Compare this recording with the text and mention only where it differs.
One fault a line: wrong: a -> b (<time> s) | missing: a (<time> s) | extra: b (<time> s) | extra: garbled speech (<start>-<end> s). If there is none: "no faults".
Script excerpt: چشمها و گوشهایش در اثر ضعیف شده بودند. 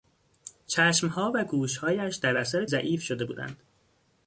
no faults